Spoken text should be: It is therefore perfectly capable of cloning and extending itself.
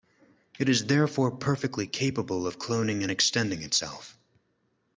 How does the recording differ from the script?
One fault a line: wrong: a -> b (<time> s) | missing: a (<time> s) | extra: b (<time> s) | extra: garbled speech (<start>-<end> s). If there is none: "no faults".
no faults